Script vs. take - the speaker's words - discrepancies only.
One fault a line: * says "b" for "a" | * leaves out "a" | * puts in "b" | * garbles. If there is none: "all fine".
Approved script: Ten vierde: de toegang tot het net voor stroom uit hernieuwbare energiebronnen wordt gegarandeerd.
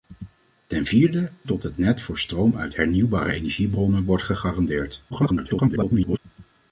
* leaves out "de toegang"
* garbles